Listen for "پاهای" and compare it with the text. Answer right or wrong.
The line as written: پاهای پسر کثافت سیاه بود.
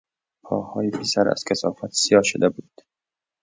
right